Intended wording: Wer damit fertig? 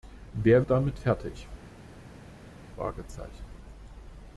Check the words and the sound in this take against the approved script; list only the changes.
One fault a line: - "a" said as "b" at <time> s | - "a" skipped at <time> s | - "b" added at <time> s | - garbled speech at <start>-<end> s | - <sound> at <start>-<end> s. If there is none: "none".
none